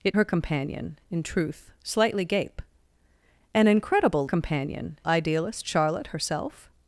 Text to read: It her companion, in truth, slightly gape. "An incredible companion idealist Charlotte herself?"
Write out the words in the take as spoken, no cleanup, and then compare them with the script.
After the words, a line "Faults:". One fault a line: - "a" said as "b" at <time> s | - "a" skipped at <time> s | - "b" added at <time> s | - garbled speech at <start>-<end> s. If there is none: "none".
It her companion, in truth, slightly gape. "An incredible companion idealist Charlotte herself?"
Faults:
none